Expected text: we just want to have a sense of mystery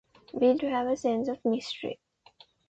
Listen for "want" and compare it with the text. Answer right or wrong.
wrong